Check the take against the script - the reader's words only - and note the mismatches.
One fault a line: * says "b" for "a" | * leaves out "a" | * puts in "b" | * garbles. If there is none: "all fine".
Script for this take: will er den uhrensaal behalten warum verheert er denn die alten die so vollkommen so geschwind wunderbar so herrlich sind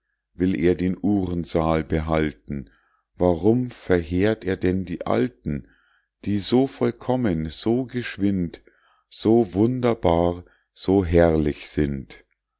* puts in "so"